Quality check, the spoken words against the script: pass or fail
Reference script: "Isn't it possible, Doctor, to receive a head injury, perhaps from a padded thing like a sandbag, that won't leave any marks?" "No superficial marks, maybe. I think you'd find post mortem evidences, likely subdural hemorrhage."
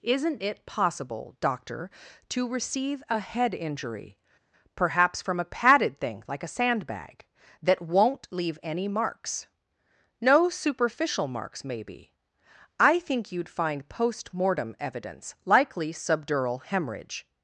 fail